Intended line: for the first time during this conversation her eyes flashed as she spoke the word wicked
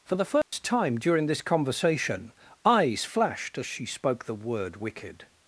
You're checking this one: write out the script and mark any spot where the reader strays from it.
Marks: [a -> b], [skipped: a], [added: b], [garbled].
for the first time during this conversation [skipped: her] eyes flashed as she spoke the word wicked